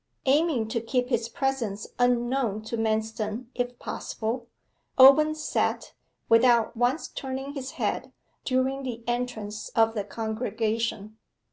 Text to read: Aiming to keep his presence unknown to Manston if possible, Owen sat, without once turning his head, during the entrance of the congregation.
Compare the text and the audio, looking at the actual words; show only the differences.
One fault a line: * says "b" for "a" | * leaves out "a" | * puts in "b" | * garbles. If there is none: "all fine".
all fine